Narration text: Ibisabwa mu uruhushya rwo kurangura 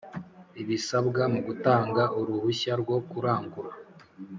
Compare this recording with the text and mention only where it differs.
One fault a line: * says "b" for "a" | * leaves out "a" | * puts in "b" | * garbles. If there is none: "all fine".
* puts in "gutanga"